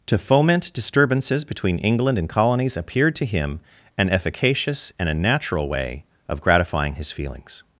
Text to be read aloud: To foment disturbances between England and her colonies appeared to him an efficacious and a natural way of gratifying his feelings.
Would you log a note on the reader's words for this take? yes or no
yes